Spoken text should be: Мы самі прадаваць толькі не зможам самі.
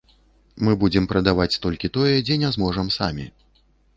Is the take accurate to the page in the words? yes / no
no